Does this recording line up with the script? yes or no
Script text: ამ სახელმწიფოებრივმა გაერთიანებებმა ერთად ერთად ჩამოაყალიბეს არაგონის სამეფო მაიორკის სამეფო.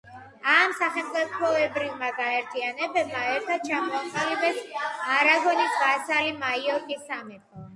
no